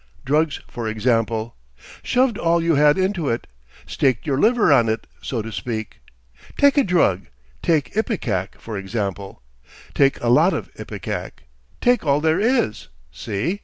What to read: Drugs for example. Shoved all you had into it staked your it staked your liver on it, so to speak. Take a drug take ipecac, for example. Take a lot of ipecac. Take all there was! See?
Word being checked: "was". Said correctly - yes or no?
no